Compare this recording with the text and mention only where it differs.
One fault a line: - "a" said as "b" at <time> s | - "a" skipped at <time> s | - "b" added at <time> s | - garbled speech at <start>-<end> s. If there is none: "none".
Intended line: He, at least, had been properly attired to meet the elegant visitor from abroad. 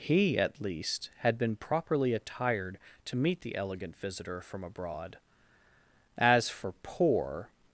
- "As for poor" added at 6.2 s